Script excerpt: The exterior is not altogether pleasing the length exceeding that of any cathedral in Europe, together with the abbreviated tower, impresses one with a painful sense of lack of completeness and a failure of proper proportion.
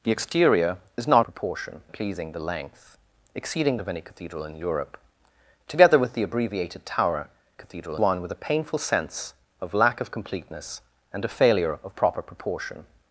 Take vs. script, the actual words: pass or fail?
fail